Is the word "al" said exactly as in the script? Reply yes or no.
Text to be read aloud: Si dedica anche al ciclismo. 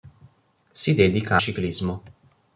no